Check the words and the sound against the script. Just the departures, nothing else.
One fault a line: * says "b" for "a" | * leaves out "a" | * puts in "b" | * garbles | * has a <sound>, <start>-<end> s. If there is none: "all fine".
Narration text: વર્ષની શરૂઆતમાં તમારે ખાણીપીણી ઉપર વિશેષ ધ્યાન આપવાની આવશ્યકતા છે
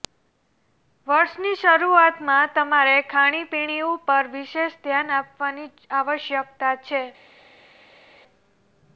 all fine